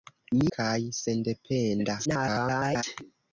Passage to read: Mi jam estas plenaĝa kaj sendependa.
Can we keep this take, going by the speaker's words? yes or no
no